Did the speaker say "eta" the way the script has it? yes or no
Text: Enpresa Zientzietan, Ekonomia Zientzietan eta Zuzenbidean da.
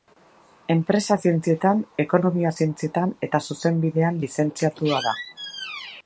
yes